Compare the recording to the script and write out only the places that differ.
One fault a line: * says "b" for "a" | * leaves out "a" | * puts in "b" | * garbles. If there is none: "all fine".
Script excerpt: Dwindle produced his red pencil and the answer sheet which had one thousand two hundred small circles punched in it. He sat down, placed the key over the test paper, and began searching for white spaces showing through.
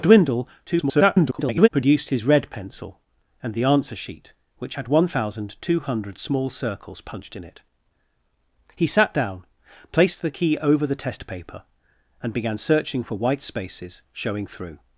* garbles